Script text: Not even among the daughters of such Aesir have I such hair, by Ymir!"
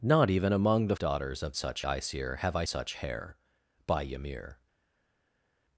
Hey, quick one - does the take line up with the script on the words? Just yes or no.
yes